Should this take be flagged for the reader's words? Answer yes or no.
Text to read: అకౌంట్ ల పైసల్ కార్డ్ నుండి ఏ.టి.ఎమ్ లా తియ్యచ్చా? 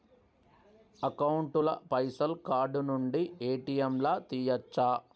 no